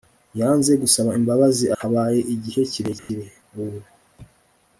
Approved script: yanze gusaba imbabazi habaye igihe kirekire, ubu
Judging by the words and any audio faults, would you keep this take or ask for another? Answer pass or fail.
fail